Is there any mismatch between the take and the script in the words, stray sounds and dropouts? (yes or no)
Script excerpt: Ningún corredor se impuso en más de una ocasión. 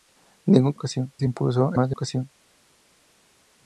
yes